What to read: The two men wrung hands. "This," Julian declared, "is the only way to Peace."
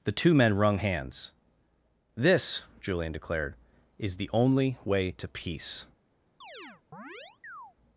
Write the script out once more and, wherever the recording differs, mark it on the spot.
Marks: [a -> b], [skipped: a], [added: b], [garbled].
The two men wrung hands. "This," Julian declared, "is the only way to Peace."